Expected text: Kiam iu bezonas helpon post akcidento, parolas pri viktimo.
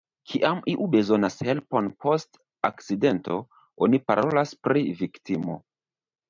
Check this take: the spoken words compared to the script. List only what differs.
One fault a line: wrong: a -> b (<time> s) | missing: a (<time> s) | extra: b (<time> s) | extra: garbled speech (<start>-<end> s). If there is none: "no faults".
extra: oni (3.9 s)